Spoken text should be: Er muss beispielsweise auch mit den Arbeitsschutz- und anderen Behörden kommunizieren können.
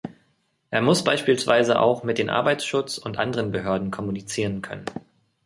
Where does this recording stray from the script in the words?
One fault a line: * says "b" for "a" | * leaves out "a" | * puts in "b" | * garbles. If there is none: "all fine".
all fine